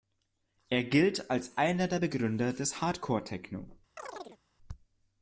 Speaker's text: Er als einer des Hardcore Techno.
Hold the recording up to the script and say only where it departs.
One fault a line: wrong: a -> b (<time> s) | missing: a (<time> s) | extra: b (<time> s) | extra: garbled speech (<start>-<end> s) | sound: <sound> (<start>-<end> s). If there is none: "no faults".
extra: gilt (0.8 s)
extra: der Begründer (1.9 s)
sound: chirp (4.0-4.4 s)